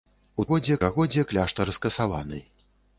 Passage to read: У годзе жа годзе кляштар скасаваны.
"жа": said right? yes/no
yes